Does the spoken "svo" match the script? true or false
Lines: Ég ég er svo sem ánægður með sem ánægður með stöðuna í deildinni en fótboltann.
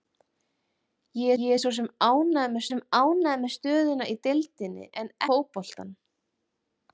true